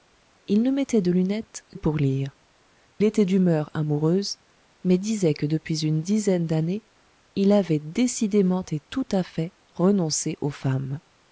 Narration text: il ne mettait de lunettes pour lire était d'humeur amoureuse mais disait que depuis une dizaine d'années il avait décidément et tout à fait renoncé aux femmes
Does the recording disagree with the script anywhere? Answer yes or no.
no